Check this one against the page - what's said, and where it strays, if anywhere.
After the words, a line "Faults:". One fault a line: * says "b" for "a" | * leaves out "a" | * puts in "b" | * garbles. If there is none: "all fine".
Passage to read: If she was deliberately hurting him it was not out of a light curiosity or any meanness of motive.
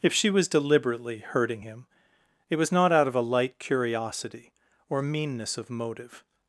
If she was deliberately hurting him it was not out of a light curiosity or meanness of motive.
Faults:
* leaves out "any"